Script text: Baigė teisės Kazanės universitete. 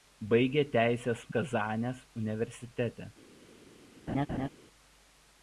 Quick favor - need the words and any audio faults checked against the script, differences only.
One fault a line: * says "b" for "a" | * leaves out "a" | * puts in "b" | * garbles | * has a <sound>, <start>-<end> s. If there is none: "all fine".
* has a laugh, 4.1-4.5 s